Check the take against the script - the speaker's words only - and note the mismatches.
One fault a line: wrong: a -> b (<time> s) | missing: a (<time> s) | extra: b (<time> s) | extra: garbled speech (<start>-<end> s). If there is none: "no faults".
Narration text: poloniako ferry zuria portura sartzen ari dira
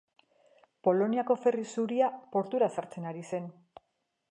wrong: dira -> zen (3.3 s)